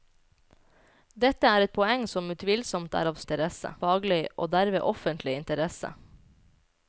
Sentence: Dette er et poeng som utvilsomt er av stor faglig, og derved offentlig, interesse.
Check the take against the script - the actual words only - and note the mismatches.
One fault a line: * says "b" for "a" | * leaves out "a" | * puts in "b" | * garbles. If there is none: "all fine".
* says "interesse" for "stor"